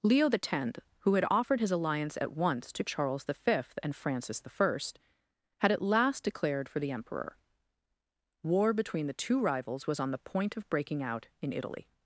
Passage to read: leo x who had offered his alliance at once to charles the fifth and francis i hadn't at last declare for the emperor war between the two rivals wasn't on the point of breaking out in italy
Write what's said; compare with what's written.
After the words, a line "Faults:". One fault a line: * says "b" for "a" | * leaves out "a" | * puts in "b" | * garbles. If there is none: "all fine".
leo x who had offered his alliance at once to charles the fifth and francis i had at last declared for the emperor war between the two rivals was on the point of breaking out in italy
Faults:
* says "had" for "hadn't"
* says "declared" for "declare"
* says "was" for "wasn't"